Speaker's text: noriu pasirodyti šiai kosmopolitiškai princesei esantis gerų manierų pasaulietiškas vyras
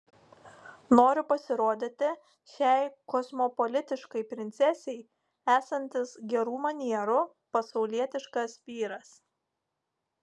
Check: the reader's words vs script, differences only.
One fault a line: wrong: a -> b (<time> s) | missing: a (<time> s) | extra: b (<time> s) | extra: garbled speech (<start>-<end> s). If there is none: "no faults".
no faults